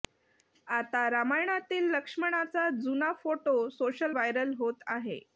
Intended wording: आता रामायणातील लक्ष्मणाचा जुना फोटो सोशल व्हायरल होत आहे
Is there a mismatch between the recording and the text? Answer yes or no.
no